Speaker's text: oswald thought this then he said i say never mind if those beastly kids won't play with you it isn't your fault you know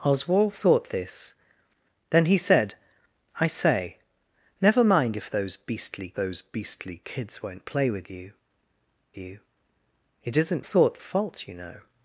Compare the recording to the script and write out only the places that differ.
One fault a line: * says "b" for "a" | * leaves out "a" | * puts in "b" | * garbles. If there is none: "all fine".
* puts in "those beastly"
* puts in "you"
* says "thought" for "your"